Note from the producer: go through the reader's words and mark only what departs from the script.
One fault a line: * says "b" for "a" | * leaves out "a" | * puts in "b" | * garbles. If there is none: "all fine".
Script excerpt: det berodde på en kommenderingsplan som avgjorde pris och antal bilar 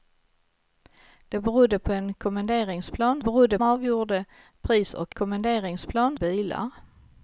* says "berodde" for "som"
* says "kommenderingsplan" for "antal"